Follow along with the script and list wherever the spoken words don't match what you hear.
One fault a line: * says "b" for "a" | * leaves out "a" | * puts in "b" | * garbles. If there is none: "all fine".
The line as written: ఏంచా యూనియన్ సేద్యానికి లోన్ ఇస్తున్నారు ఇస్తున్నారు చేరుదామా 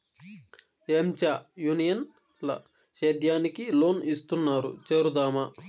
* puts in "ల"
* leaves out "ఇస్తున్నారు"